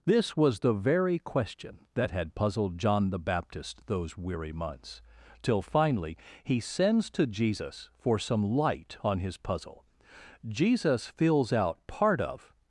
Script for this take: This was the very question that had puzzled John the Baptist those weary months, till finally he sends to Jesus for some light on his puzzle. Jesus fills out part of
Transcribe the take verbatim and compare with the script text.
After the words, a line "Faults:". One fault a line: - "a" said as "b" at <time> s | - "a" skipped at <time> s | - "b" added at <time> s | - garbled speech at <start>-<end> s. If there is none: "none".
This was the very question that had puzzled John the Baptist those weary months, till finally he sends to Jesus for some light on his puzzle. Jesus fills out part of
Faults:
none